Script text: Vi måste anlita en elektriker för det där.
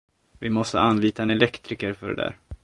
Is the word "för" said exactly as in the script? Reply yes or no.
yes